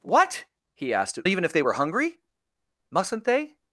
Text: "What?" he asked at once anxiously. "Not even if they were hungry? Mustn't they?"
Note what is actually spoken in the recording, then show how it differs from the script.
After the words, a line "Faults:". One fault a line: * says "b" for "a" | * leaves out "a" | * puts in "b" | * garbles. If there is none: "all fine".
"What?" he asked at even if they were hungry? Mustn't they?"
Faults:
* leaves out "once anxiously Not"